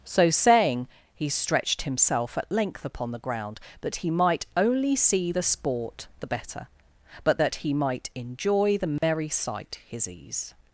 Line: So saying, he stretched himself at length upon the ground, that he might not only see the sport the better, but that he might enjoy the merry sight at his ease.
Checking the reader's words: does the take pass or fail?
fail